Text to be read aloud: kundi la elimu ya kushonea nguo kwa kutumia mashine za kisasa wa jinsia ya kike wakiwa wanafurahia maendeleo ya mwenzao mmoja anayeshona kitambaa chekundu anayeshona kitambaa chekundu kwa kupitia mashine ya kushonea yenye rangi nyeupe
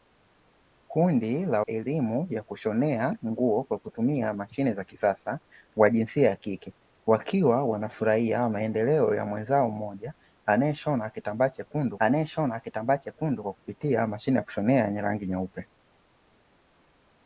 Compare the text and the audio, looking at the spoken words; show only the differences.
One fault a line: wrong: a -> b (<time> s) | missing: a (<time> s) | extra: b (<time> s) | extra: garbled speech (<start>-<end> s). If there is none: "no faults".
no faults